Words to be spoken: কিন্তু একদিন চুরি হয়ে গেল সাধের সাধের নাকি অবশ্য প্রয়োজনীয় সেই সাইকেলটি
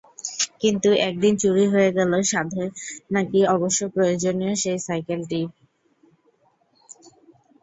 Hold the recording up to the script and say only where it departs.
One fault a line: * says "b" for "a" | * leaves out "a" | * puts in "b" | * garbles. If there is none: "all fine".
* leaves out "সাধের"